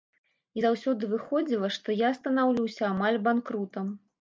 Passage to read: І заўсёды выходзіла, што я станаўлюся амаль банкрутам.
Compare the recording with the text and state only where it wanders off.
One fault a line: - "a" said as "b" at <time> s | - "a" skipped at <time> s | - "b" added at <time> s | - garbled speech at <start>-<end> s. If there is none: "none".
none